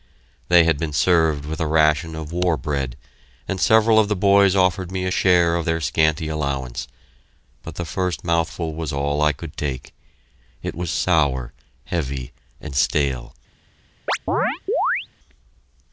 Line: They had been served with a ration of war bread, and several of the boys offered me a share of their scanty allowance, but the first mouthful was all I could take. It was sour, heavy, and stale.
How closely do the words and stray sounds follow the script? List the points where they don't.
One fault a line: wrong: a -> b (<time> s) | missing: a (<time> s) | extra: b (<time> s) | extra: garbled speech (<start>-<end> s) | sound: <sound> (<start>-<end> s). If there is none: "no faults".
sound: chirp (14.1-15.1 s)